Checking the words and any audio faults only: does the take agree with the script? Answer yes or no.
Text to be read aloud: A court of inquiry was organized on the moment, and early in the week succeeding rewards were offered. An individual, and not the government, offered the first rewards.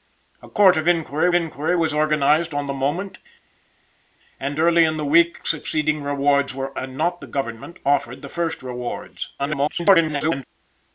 no